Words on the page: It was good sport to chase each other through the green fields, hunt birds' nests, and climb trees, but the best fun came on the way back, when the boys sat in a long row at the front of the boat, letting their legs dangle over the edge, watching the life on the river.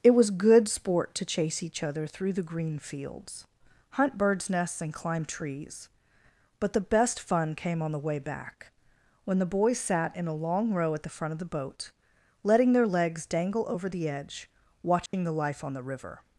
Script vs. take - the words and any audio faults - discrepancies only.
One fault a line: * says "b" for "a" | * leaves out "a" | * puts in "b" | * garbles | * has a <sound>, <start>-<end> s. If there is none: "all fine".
* has a dropout, 15.1-15.1 s